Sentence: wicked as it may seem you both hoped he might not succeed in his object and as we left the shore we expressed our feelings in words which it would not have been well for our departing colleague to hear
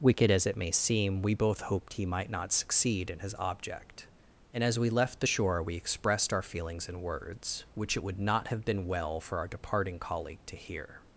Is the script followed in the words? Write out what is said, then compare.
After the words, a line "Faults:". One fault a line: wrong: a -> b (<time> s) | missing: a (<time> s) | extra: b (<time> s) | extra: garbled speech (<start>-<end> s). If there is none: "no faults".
wicked as it may seem we both hoped he might not succeed in his object and as we left the shore we expressed our feelings in words which it would not have been well for our departing colleague to hear
Faults:
wrong: you -> we (1.2 s)